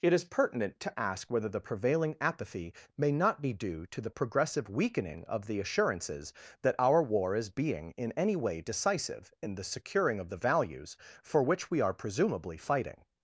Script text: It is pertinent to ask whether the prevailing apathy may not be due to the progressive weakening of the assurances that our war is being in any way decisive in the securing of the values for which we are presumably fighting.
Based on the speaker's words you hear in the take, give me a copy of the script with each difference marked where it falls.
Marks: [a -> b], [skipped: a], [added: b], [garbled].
It is pertinent to ask whether the prevailing apathy may not be due to the progressive weakening of the assurances that our war is being in any way decisive in the securing of the values for which we are presumably fighting.